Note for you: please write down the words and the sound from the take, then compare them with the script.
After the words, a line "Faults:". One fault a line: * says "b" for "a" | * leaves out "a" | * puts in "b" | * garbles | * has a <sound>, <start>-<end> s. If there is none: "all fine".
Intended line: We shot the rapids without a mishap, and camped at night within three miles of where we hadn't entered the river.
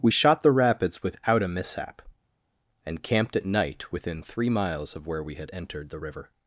We shot the rapids without a mishap, and camped at night within three miles of where we had entered the river.
Faults:
* says "had" for "hadn't"